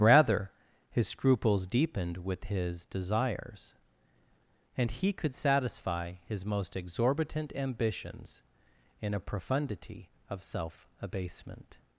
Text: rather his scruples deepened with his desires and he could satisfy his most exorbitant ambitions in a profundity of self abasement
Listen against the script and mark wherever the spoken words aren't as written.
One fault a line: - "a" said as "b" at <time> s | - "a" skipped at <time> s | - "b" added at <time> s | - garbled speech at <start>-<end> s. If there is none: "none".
none